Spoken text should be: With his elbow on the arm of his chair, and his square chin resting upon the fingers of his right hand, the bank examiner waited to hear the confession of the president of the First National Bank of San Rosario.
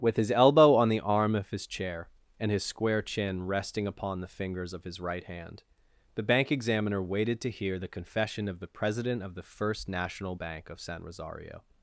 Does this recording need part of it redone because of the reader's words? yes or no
no